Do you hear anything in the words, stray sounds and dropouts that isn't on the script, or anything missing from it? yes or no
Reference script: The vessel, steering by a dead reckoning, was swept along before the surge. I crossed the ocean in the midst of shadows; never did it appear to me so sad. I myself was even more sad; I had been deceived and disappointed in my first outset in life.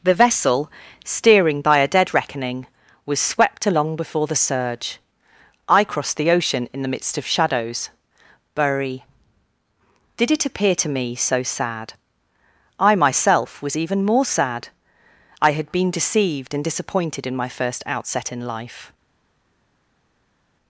yes